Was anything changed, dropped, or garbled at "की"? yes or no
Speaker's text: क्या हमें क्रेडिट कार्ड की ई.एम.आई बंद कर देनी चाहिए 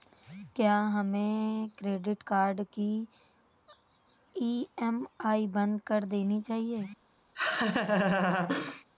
no